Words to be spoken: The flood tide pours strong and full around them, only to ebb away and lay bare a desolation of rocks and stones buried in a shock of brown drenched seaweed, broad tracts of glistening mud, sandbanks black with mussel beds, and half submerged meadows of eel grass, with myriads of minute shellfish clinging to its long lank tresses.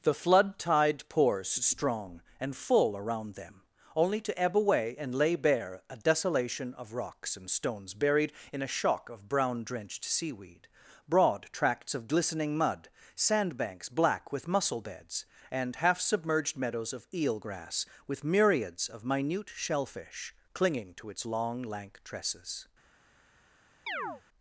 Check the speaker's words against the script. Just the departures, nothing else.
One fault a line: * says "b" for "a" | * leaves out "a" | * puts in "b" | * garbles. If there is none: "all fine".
all fine